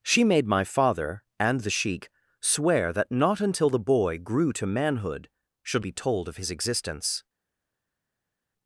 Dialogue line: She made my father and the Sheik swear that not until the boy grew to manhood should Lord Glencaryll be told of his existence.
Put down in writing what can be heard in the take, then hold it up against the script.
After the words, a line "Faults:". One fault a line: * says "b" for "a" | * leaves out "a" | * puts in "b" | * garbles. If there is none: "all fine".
She made my father and the Sheik swear that not until the boy grew to manhood should Be told of his existence.
Faults:
* leaves out "Lord Glencaryll"